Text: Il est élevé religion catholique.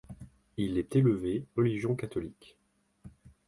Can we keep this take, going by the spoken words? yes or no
yes